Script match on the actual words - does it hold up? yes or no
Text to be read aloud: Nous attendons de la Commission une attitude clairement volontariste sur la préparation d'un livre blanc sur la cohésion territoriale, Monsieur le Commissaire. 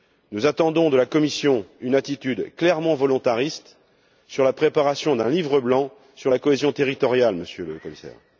yes